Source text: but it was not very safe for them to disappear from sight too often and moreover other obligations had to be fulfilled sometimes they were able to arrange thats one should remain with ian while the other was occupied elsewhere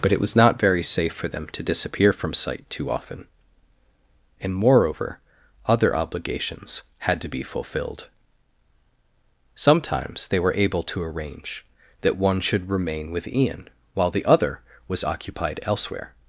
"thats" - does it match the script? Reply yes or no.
no